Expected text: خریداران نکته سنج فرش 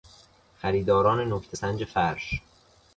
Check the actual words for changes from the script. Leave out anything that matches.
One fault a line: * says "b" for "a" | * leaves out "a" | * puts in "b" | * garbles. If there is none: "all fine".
all fine